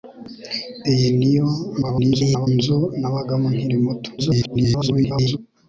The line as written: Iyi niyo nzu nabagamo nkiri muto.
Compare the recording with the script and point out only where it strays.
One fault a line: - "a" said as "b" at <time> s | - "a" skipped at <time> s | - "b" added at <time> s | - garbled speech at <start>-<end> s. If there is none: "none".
- garbled speech at 1.8-2.5 s
- garbled speech at 4.2-5.4 s